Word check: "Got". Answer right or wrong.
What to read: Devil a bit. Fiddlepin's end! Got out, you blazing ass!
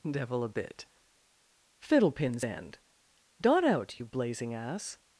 wrong